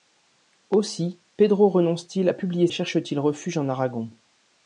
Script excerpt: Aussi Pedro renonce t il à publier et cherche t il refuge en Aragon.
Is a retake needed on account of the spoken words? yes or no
no